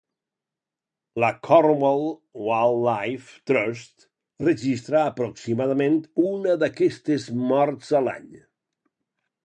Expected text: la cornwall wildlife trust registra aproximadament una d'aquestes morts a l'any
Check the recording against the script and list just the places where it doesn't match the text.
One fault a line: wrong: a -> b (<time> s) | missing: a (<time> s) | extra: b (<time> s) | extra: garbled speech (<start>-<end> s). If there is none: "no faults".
no faults